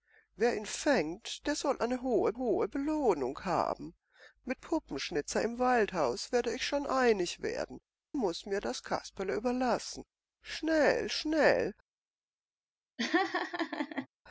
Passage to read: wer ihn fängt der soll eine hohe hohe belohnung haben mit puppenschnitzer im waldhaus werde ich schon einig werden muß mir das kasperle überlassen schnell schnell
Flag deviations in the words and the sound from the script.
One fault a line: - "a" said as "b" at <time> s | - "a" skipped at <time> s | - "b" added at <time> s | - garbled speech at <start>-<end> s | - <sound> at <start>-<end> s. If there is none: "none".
- laugh at 13.0-14.1 s